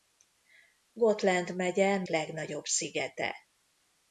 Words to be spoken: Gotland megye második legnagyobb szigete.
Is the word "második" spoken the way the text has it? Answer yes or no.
no